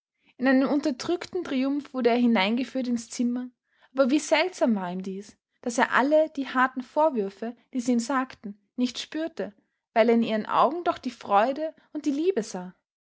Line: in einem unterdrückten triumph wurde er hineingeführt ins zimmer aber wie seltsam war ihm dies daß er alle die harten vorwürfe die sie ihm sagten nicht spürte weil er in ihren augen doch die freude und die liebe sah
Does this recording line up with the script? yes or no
yes